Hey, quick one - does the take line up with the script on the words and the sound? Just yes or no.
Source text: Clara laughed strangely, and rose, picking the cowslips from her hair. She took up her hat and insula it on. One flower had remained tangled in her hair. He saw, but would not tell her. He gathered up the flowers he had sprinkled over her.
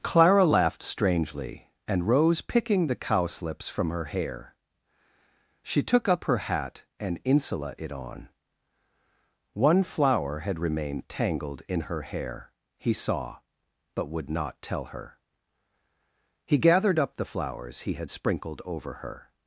yes